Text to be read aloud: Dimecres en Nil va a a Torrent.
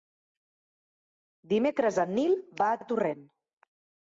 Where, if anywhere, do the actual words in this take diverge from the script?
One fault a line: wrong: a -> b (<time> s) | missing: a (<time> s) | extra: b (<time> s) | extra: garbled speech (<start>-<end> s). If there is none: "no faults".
no faults